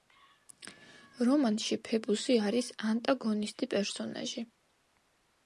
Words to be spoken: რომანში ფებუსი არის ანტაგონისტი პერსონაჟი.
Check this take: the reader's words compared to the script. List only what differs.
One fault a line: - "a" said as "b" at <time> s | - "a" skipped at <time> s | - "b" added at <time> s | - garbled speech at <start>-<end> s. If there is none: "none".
none